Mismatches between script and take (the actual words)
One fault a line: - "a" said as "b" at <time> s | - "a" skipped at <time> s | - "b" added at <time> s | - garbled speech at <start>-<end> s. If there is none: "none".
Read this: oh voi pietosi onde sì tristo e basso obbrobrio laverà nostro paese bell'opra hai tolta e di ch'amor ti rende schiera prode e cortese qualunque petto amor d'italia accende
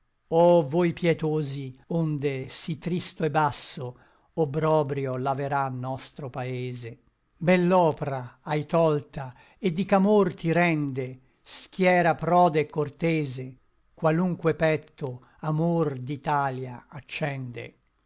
none